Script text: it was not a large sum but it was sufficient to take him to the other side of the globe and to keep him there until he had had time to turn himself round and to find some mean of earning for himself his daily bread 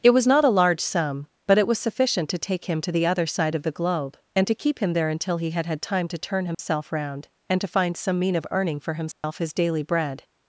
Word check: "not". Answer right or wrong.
right